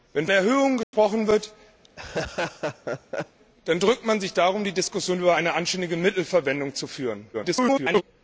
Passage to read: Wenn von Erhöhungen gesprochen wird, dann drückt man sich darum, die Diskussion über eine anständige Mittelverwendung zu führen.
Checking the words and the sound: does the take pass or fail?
fail